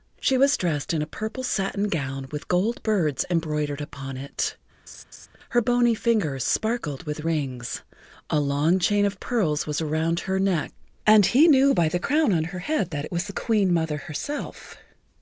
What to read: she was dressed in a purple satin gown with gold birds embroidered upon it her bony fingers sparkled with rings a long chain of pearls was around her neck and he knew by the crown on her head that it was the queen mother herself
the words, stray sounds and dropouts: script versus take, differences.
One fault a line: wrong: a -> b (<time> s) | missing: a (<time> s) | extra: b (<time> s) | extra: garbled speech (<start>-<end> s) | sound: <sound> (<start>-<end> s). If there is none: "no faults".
sound: laugh (4.9-5.3 s)